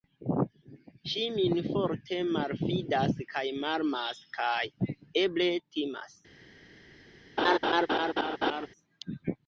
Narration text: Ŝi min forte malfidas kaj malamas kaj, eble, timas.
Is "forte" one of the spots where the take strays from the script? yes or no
no